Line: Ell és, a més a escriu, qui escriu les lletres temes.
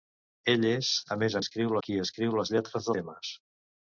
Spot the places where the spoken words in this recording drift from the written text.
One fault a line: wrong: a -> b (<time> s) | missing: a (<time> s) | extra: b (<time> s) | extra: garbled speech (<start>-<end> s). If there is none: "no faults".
no faults